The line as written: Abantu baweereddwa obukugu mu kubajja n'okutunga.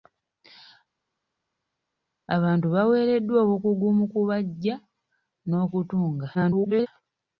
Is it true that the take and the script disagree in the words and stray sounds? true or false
true